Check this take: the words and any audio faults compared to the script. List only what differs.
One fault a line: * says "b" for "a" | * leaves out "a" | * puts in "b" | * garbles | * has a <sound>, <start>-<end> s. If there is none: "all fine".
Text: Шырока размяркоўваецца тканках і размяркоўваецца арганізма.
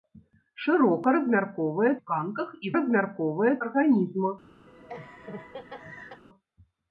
* has a laugh, 4.7-6.2 s